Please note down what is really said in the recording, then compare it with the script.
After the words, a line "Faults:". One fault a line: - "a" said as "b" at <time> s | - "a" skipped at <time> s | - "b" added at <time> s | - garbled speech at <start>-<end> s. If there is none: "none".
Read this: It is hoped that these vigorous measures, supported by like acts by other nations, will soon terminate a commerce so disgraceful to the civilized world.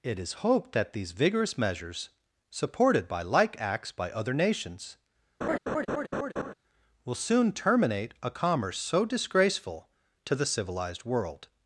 It is hoped that these vigorous measures, supported by like acts by other nations, will soon terminate a commerce so disgraceful to the civilized world.
Faults:
none